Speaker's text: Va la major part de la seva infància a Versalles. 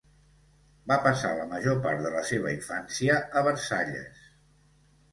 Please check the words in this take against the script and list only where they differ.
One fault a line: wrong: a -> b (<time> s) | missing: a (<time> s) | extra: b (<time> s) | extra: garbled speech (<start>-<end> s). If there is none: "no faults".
extra: passar (1.1 s)